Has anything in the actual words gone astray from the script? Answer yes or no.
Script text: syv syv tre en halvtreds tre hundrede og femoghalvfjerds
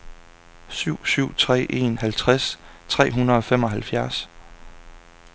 no